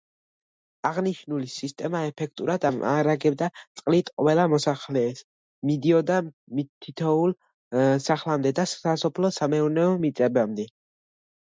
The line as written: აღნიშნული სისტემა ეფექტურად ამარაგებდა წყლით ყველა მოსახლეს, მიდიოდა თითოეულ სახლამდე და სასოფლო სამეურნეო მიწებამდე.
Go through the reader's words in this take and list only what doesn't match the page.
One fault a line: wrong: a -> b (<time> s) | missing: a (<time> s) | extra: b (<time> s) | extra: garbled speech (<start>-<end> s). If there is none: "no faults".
no faults